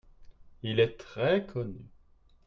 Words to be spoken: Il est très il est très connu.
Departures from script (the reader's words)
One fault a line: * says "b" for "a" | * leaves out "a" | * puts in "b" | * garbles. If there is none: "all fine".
* leaves out "il est très"